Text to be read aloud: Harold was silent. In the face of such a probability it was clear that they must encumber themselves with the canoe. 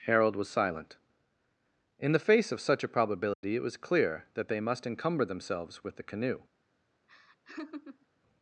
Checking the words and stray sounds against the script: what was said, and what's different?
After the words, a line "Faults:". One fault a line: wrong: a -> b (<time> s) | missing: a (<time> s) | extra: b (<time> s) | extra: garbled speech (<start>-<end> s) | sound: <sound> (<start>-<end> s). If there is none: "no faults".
Harold was silent. In the face of such a probability it was clear that they must encumber themselves with the canoe.
Faults:
sound: dropout (3.3-3.4 s)
sound: laugh (7.1-8.1 s)